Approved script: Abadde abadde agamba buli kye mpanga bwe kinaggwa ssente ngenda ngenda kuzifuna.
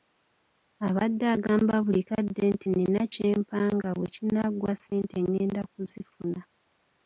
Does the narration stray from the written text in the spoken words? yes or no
yes